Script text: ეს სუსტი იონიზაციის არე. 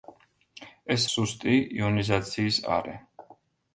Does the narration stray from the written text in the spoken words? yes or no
no